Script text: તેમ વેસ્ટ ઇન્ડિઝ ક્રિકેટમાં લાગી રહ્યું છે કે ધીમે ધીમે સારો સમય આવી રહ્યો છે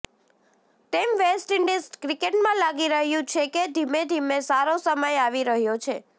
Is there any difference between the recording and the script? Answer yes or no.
no